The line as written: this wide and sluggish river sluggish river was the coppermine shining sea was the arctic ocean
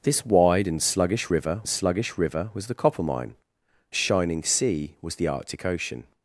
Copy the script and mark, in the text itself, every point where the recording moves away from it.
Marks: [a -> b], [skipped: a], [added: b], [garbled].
this wide and sluggish river sluggish river was the coppermine shining sea was the arctic ocean